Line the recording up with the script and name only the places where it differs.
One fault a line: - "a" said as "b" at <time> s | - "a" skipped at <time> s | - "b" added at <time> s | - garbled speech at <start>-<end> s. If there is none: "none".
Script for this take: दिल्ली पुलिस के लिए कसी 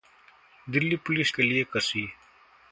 none